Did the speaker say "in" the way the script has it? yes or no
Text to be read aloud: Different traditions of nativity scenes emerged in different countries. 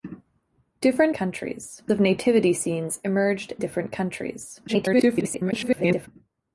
no